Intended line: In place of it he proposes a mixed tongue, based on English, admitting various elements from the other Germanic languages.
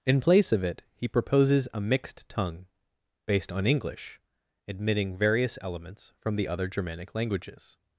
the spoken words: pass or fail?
pass